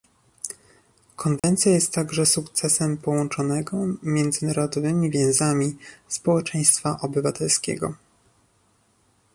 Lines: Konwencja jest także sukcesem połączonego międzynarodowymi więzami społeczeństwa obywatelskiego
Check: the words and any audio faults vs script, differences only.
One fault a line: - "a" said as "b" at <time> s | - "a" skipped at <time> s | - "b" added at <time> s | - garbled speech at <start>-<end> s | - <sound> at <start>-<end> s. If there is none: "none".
- dropout at 1.4-1.4 s